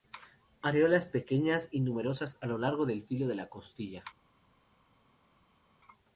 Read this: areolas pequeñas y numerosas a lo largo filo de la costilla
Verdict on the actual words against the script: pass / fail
fail